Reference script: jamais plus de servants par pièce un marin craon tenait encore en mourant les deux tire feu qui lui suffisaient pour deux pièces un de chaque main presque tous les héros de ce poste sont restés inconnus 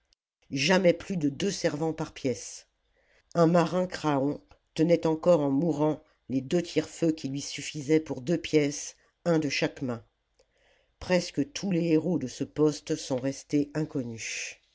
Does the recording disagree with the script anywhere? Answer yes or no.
yes